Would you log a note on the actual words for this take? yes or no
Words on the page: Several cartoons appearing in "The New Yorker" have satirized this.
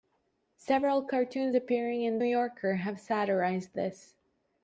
yes